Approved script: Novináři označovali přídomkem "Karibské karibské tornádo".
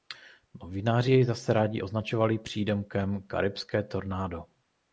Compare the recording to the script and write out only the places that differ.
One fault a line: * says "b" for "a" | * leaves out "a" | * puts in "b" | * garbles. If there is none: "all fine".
* puts in "jej zase rádi"
* leaves out "karibské"